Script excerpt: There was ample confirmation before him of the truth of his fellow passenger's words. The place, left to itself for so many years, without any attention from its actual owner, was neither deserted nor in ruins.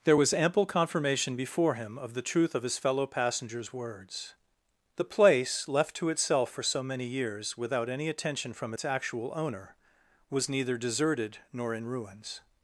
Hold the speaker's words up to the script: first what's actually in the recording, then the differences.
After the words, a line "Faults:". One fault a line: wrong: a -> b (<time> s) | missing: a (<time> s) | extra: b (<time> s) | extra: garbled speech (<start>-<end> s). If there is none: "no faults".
There was ample confirmation before him of the truth of his fellow passenger's words. The place, left to itself for so many years, without any attention from its actual owner, was neither deserted nor in ruins.
Faults:
no faults